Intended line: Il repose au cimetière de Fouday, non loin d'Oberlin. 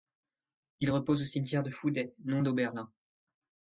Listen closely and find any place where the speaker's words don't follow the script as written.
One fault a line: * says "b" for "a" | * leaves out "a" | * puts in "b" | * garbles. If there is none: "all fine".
* leaves out "loin"